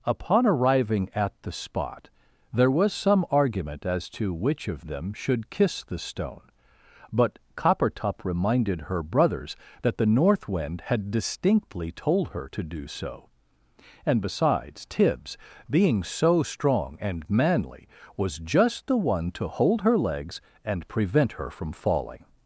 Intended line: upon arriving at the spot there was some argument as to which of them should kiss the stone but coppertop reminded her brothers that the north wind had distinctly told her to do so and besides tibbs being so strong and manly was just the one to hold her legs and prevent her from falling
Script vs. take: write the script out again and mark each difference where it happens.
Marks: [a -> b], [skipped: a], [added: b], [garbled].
upon arriving at the spot there was some argument as to which of them should kiss the stone but coppertop reminded her brothers that the north wind had distinctly told her to do so and besides tibbs being so strong and manly was just the one to hold her legs and prevent her from falling